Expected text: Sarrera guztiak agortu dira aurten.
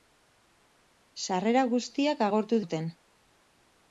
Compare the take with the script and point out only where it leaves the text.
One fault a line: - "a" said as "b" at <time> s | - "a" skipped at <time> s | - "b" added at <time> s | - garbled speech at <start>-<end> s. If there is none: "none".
- "dira" skipped at 2.6 s